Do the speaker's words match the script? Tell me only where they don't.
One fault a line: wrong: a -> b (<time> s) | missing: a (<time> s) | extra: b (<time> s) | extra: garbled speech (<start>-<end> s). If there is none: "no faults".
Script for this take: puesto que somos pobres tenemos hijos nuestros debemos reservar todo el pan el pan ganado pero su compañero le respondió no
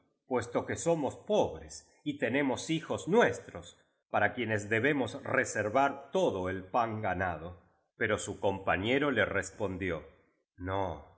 extra: y (2.0 s)
extra: para quienes (4.1 s)
missing: el pan (7.0 s)